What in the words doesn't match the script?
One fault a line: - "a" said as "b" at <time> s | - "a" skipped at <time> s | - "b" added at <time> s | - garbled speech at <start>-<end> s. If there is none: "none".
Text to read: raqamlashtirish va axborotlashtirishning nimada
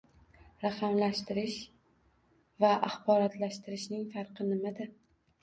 - "farqi" added at 4.2 s